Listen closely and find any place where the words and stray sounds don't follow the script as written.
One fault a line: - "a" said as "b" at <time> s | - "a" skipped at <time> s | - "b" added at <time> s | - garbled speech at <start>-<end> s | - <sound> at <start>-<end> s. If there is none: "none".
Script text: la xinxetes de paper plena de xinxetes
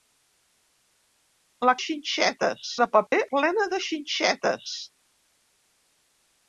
- dropout at 3.1-3.1 s